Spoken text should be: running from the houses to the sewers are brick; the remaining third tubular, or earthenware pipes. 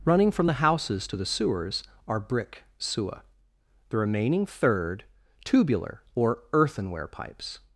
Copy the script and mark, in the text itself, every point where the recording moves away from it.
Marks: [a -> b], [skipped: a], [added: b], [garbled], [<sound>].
running from the houses to the sewers are brick; [added: sewer] the remaining third tubular, or earthenware pipes.